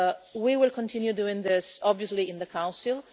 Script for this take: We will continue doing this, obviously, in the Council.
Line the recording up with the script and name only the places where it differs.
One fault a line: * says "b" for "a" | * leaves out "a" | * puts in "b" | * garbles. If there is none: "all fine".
all fine